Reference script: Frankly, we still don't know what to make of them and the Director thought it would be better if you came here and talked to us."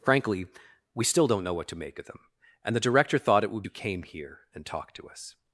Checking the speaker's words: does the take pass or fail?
fail